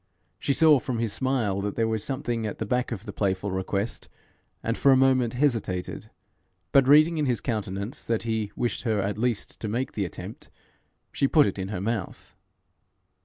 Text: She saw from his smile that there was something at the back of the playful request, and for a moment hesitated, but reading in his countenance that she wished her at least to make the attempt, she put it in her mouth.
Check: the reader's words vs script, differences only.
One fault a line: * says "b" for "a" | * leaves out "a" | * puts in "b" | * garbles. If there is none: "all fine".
* says "he" for "she"